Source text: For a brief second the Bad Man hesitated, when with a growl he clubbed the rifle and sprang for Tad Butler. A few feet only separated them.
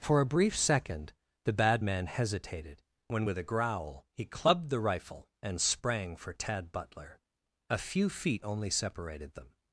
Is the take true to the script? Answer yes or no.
yes